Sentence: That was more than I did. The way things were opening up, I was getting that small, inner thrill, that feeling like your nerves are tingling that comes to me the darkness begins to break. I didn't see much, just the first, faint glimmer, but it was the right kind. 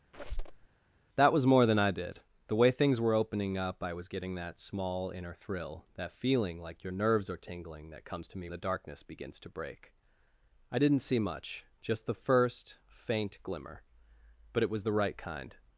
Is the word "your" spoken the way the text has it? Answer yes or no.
yes